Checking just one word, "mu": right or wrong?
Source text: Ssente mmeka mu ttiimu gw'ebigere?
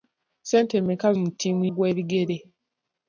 right